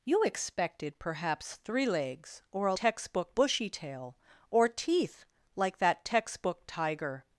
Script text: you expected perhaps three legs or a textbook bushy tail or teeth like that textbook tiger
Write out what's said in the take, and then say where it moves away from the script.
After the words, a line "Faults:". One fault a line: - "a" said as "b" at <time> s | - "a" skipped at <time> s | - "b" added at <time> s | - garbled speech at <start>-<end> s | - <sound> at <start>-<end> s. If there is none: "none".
you expected perhaps three legs or a textbook bushy tail or teeth like that textbook tiger
Faults:
none